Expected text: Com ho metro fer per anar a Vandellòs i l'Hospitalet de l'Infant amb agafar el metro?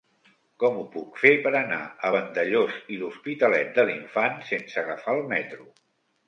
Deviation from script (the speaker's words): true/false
true